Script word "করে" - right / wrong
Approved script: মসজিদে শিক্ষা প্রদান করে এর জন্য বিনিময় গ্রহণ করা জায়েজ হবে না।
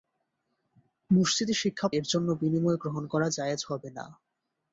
wrong